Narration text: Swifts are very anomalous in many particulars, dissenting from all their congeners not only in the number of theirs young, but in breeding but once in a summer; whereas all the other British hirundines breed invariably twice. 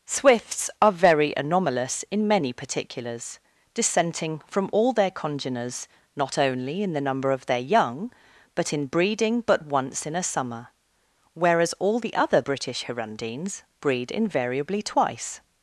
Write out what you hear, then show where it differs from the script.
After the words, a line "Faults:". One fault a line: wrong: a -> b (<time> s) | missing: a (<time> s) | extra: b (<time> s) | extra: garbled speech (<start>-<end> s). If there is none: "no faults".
Swifts are very anomalous in many particulars, dissenting from all their congeners not only in the number of their young, but in breeding but once in a summer; whereas all the other British hirundines breed invariably twice.
Faults:
wrong: theirs -> their (7.5 s)